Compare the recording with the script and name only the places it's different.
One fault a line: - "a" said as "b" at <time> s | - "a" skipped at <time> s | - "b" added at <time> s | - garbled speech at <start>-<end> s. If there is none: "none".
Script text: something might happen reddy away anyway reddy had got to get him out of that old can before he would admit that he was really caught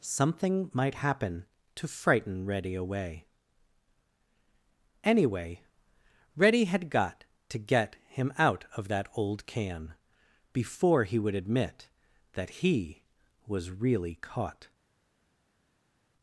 - "to frighten" added at 1.8 s